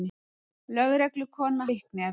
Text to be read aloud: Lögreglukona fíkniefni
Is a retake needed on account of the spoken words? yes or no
no